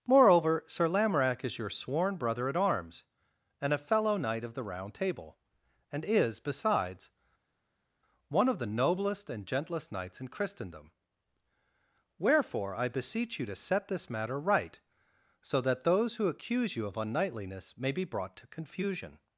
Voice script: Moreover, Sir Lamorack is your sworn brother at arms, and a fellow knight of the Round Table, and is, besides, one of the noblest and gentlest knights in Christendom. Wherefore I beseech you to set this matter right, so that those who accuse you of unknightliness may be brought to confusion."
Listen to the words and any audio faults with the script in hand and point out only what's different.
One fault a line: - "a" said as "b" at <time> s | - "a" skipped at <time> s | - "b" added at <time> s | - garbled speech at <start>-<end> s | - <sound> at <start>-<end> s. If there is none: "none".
none